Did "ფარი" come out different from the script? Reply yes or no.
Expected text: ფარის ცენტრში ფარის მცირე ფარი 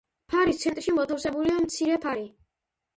no